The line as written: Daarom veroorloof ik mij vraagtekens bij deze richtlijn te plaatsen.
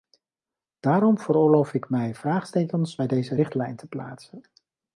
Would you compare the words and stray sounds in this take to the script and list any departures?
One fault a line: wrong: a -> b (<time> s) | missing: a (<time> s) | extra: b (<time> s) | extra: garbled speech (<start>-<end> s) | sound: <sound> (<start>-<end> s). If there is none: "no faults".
no faults